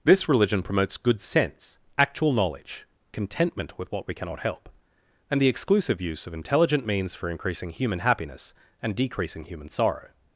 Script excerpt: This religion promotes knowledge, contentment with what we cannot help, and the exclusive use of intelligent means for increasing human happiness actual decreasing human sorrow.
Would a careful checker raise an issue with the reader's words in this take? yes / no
yes